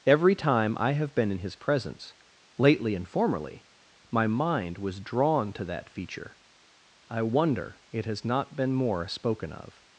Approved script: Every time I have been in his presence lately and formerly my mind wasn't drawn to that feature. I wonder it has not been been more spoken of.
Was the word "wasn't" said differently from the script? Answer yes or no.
yes